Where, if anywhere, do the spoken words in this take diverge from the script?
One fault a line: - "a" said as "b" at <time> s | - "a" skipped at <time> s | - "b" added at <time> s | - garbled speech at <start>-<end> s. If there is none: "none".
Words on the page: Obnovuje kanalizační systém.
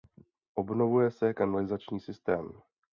- "se" added at 1.1 s